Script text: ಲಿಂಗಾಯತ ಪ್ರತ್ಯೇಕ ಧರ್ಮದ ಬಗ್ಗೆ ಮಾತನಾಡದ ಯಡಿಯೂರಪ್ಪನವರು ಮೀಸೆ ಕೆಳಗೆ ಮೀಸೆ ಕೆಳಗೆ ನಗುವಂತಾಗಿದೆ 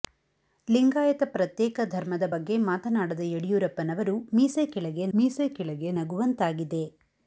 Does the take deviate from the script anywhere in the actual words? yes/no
no